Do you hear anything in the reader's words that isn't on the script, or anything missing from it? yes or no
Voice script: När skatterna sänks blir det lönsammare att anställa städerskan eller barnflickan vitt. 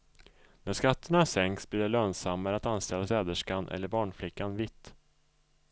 no